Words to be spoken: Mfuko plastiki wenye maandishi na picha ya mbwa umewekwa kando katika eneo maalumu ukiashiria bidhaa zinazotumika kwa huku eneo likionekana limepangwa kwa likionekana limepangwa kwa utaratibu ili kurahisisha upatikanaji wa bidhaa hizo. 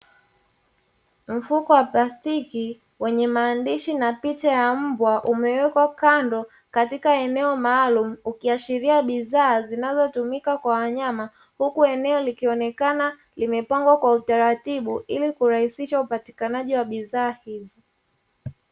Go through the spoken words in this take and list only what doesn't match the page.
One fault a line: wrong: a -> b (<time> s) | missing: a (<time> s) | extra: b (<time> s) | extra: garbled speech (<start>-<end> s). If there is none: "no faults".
extra: wa (1.7 s)
extra: wanyama (10.7 s)
missing: likionekana limepangwa kwa (14.1 s)